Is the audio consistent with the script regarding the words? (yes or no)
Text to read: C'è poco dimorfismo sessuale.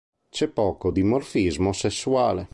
yes